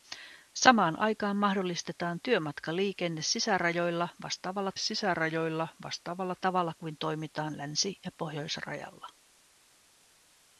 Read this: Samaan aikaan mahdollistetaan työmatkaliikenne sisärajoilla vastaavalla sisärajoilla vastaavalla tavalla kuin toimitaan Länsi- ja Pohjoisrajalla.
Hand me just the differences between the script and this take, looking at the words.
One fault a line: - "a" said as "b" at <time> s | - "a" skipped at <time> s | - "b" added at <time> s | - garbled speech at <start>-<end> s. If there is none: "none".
none